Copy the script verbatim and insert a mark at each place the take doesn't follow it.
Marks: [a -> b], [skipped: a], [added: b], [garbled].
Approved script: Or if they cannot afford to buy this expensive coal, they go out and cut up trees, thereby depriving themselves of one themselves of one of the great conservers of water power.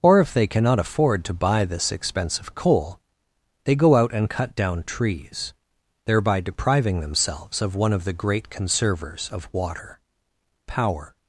Or if they cannot afford to buy this expensive coal, they go out and cut [up -> down] trees, thereby depriving themselves of one [skipped: themselves of one] of the great conservers of water power.